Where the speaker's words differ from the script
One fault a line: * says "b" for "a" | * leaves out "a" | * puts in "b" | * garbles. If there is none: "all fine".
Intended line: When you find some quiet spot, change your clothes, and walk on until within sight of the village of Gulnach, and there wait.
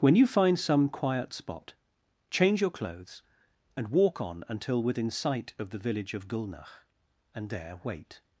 all fine